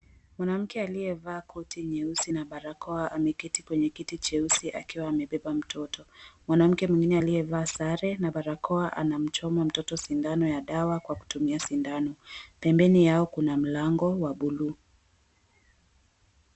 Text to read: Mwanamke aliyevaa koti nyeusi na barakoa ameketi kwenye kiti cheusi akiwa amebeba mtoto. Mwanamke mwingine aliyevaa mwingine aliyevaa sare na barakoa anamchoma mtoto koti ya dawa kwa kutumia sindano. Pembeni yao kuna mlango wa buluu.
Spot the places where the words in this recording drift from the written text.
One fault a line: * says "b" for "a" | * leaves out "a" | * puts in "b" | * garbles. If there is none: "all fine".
* leaves out "mwingine aliyevaa"
* says "sindano" for "koti"